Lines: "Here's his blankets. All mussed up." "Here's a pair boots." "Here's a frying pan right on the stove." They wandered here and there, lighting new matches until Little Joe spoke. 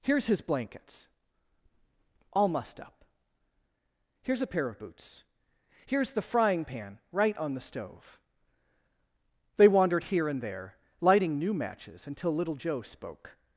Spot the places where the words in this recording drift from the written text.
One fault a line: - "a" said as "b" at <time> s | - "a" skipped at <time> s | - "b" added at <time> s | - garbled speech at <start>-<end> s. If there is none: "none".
- "of" added at 4.7 s
- "a" said as "the" at 6.1 s